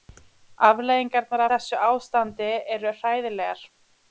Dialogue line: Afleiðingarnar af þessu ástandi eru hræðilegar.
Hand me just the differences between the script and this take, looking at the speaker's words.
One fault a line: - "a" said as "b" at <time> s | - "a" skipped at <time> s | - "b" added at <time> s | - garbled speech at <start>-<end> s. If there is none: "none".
- "af" skipped at 1.4 s